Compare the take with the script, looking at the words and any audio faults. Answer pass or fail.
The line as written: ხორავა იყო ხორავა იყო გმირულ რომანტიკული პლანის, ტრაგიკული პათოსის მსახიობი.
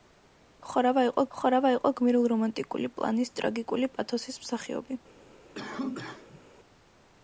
fail